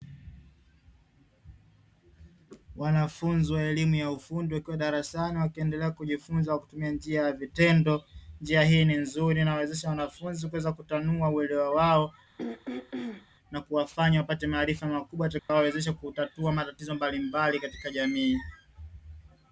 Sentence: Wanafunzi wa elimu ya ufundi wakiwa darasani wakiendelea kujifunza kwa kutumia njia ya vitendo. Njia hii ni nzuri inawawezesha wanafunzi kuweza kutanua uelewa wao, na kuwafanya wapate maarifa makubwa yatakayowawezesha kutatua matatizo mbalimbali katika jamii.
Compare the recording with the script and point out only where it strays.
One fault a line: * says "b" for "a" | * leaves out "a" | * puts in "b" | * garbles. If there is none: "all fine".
all fine